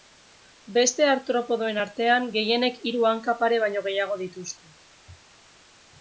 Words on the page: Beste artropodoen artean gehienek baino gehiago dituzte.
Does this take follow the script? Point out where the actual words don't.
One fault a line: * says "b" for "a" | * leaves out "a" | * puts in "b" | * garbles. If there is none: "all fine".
* puts in "hiru hanka pare"